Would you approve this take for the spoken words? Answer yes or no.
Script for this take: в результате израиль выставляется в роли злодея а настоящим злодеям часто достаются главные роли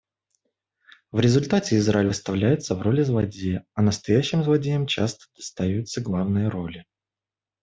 yes